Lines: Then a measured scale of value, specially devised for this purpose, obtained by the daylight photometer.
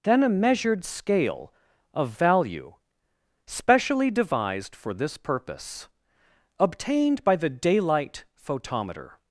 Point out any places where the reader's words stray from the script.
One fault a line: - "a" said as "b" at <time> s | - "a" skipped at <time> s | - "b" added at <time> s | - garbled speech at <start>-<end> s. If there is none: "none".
none